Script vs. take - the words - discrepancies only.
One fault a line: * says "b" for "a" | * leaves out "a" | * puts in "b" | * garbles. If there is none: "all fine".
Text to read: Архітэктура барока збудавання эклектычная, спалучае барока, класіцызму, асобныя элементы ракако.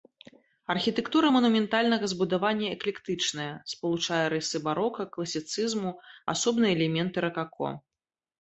* says "манументальнага" for "барока"
* puts in "рысы"